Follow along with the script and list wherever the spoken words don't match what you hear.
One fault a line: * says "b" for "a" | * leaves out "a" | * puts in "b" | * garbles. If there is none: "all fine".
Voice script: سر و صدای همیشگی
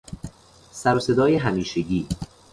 all fine